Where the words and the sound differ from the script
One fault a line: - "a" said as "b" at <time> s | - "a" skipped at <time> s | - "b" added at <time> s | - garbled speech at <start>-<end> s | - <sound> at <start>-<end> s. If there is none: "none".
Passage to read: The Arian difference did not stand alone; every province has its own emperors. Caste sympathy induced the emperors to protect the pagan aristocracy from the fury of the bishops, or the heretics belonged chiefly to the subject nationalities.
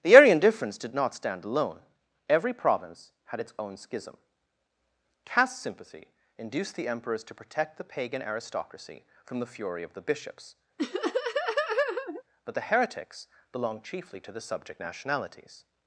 - "has" said as "had" at 3.2 s
- "emperors" said as "schism" at 3.8 s
- laugh at 10.8-12.2 s
- "or" said as "but" at 12.4 s